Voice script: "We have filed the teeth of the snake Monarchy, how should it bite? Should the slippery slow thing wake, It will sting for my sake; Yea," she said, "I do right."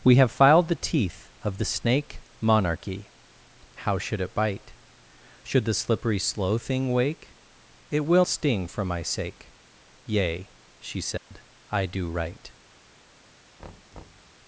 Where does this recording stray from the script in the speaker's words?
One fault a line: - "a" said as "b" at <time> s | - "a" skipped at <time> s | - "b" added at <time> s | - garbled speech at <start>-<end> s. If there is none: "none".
none